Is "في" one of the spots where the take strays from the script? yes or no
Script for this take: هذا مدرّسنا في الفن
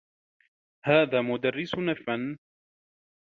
yes